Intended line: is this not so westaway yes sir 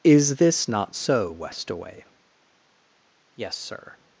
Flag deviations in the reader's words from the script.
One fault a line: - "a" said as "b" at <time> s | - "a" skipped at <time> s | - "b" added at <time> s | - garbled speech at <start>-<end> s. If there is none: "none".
none